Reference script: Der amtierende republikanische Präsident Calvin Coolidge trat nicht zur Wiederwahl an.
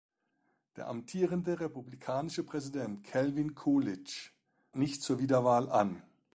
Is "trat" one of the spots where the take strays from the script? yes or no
yes